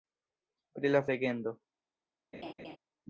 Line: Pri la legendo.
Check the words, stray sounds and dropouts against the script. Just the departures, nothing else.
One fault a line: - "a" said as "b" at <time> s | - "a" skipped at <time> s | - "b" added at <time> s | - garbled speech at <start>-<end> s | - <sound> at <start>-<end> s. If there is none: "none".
- laugh at 2.3-2.8 s